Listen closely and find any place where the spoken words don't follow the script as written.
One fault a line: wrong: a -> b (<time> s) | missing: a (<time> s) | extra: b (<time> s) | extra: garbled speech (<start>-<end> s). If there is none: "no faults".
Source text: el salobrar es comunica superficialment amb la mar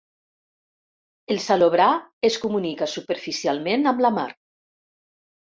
no faults